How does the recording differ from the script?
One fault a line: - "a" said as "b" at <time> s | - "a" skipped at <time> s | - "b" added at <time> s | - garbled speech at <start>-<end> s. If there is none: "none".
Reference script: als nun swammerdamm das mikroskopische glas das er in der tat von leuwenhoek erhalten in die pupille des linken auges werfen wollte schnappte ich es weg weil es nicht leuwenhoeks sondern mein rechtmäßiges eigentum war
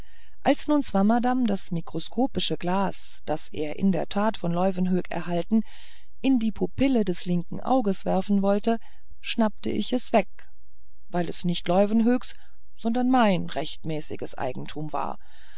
none